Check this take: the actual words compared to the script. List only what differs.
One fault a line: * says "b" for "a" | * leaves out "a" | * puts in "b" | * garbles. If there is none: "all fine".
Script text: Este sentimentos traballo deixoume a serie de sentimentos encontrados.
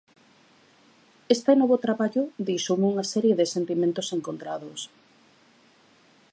* says "novo" for "sentimentos"
* says "unha" for "a"